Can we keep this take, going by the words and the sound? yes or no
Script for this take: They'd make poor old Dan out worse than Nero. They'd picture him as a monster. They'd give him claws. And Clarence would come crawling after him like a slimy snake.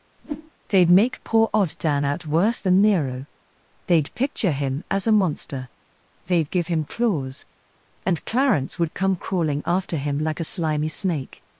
no